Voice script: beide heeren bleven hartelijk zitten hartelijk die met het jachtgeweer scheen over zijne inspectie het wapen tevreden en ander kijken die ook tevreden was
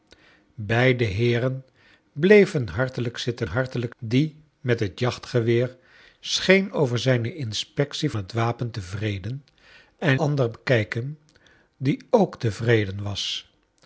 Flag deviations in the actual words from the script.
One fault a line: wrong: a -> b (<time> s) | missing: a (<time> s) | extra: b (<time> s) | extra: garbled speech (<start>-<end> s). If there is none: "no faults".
no faults